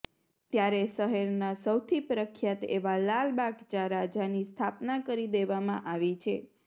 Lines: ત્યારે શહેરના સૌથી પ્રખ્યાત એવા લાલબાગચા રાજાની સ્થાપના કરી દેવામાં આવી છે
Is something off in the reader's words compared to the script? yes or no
no